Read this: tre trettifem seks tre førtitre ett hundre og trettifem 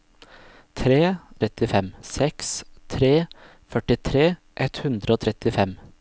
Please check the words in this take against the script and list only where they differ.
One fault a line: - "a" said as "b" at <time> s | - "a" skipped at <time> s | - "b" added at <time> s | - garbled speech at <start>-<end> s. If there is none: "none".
none